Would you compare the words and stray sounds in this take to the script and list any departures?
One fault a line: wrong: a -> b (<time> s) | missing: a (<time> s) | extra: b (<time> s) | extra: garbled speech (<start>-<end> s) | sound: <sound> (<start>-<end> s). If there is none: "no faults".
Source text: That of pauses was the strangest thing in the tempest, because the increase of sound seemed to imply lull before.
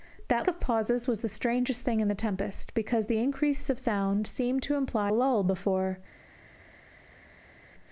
no faults